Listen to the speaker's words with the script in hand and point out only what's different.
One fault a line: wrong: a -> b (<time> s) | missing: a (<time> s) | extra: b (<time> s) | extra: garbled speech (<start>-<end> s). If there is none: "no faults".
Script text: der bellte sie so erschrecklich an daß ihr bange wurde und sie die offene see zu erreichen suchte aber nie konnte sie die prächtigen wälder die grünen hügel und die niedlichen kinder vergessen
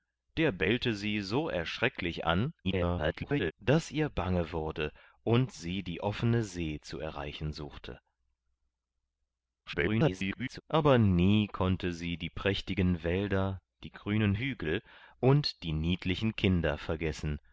extra: garbled speech (2.6-3.5 s)
extra: garbled speech (9.7-10.6 s)